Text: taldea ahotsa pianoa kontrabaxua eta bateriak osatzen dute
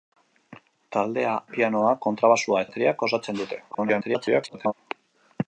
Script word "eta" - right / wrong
wrong